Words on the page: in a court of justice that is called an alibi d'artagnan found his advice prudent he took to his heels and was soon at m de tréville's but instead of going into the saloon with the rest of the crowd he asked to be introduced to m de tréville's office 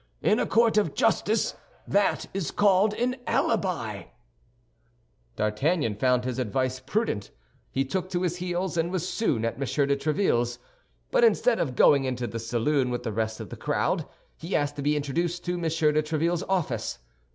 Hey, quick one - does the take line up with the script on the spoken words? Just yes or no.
yes